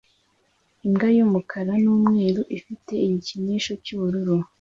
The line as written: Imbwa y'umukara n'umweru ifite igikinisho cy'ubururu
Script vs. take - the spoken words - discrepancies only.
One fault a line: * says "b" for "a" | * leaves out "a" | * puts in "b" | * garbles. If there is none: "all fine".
all fine